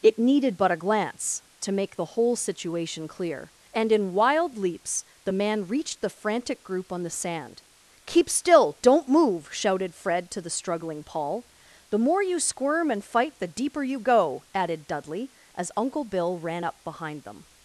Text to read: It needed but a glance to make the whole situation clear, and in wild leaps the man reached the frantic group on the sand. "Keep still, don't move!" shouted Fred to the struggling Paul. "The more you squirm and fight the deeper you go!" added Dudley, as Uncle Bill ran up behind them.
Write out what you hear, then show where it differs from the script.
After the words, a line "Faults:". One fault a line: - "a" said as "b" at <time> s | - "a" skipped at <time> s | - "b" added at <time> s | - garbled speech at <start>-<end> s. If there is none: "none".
It needed but a glance to make the whole situation clear, and in wild leaps the man reached the frantic group on the sand. "Keep still, don't move!" shouted Fred to the struggling Paul. "The more you squirm and fight the deeper you go!" added Dudley, as Uncle Bill ran up behind them.
Faults:
none